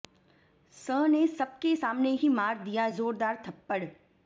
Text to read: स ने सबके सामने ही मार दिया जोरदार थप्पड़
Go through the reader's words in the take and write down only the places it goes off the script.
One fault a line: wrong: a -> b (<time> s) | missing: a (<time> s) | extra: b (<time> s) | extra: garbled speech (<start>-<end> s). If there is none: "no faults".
no faults